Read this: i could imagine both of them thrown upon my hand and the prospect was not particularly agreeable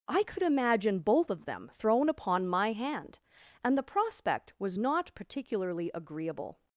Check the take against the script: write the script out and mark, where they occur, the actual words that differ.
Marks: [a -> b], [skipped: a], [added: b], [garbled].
i could imagine both of them thrown upon my hand and the prospect was not particularly agreeable